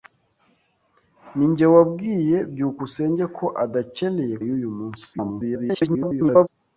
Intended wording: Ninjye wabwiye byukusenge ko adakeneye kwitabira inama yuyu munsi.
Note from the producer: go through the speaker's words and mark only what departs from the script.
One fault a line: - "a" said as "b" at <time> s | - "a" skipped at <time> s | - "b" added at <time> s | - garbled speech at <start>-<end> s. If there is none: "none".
- "kwitabira inama" skipped at 4.3 s
- garbled speech at 5.1-6.5 s